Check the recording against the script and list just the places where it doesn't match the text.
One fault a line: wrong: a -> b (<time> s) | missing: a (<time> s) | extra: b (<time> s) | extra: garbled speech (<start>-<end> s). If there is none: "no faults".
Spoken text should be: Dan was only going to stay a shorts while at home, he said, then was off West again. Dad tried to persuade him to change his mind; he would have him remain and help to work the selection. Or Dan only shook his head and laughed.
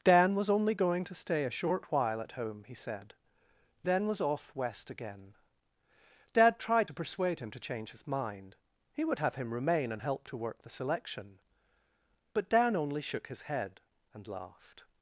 wrong: shorts -> short (1.5 s)
wrong: Or -> But (12.3 s)